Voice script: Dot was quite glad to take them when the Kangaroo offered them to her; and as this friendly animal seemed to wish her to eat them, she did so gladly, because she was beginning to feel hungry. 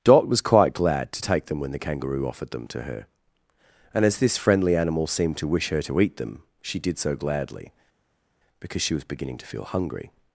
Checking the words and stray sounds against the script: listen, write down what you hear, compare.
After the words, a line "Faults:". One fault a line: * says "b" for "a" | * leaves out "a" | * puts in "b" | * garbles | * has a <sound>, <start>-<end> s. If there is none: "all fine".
Dot was quite glad to take them when the Kangaroo offered them to her; and as this friendly animal seemed to wish her to eat them, she did so gladly, because she was beginning to feel hungry.
Faults:
all fine